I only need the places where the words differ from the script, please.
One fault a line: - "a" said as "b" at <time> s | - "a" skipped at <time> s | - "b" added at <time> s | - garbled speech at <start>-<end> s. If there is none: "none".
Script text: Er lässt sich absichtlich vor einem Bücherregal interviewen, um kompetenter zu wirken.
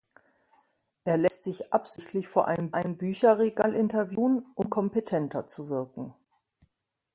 - "einem" added at 2.7 s